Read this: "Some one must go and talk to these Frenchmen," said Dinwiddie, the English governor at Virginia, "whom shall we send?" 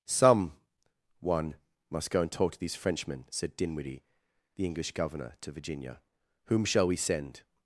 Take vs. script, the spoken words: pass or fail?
fail